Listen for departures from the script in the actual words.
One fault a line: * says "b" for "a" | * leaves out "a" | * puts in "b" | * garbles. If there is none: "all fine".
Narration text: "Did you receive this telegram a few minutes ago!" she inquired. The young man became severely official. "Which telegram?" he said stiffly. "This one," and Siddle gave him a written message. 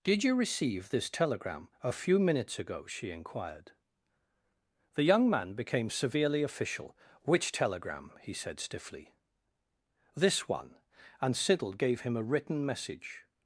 all fine